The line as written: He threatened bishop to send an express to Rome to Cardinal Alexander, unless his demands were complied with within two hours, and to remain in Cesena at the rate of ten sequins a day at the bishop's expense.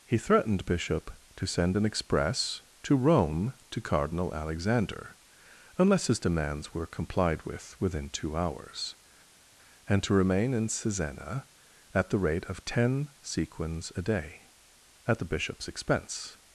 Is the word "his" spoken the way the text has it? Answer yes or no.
yes